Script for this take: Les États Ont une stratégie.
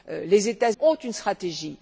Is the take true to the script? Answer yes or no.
yes